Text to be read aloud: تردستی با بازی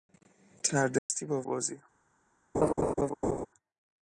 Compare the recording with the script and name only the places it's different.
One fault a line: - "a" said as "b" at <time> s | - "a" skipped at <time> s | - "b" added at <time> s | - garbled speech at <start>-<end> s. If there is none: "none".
none